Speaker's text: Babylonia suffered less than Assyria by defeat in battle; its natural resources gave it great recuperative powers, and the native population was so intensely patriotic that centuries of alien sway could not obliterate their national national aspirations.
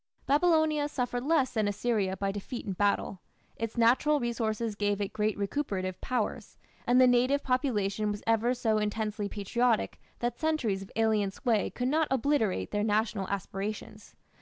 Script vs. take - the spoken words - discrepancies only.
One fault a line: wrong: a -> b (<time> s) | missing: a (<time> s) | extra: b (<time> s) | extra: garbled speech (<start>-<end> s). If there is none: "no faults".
extra: ever (8.3 s)
missing: national (13.3 s)